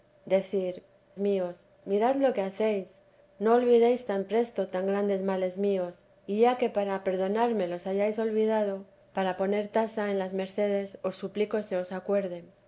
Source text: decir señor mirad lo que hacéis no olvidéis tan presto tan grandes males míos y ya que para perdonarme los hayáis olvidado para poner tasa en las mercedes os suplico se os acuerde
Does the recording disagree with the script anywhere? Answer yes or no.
yes